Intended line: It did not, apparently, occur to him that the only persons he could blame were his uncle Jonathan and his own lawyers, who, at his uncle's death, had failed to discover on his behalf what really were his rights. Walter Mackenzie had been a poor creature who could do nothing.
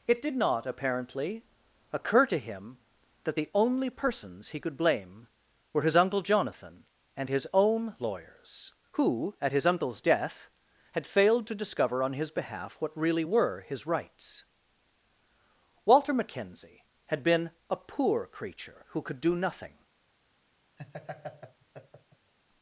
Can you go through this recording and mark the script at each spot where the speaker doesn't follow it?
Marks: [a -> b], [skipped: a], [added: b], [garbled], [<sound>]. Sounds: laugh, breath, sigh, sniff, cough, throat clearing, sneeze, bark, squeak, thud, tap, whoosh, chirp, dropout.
It did not, apparently, occur to him that the only persons he could blame were his uncle Jonathan and his own lawyers, who, at his uncle's death, had failed to discover on his behalf what really were his rights. Walter Mackenzie had been a poor creature who could do nothing. [laugh]